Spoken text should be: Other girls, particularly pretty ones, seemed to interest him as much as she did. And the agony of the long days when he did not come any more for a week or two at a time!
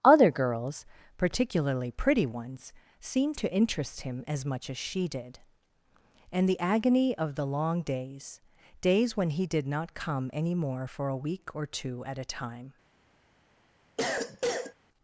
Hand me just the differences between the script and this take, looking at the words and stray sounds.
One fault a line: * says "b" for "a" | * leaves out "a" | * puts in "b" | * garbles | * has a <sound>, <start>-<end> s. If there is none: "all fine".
* puts in "days"
* has a cough, 14.0-14.7 s